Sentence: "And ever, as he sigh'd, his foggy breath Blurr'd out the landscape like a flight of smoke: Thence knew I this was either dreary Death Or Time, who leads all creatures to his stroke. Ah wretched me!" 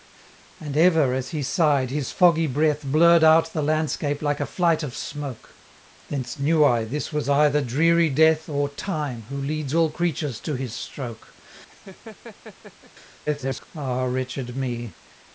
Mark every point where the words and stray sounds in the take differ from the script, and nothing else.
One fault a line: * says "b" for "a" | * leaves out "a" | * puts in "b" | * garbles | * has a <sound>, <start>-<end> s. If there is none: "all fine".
* has a laugh, 11.7-12.9 s
* garbles